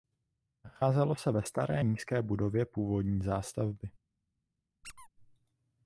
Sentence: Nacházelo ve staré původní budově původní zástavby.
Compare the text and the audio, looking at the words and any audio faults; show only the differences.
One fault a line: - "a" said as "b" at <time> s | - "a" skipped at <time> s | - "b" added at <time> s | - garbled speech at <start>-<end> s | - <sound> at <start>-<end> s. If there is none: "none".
- "se" added at 1.1 s
- "původní" said as "nízké" at 1.8 s
- squeak at 4.8-5.1 s